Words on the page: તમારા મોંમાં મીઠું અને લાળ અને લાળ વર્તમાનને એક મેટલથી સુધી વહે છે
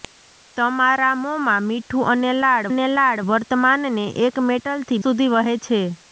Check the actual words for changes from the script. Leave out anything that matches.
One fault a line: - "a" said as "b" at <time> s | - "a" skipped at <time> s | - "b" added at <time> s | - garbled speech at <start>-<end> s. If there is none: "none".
none